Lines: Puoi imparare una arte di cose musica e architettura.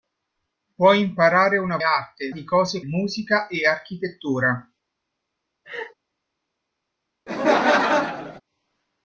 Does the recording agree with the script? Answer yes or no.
yes